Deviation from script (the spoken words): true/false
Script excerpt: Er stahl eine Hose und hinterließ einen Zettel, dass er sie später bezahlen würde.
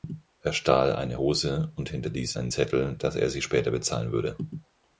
false